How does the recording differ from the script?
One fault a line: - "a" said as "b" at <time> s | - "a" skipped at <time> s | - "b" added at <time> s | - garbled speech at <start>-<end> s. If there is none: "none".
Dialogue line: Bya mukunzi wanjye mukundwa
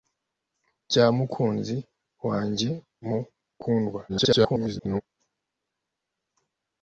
- garbled speech at 4.1-5.0 s